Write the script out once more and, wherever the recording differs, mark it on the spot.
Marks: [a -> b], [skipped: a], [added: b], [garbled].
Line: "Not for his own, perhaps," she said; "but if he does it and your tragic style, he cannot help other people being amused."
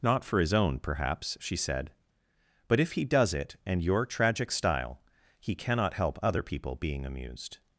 "Not for his own, perhaps," she said; "but if he does it and your tragic style, he cannot help other people being amused."